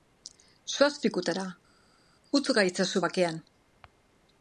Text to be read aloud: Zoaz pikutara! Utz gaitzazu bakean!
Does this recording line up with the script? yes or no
yes